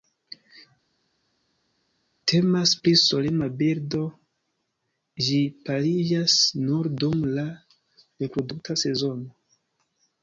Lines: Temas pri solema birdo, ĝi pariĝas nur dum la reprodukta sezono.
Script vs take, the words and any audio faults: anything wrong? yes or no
no